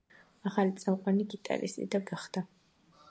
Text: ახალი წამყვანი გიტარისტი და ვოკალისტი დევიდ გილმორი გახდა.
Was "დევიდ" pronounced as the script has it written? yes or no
no